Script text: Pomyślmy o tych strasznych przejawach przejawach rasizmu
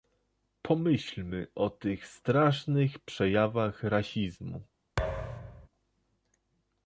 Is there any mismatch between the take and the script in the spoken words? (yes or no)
yes